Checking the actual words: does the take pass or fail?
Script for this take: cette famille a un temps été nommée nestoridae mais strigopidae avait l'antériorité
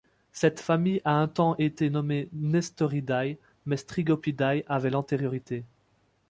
pass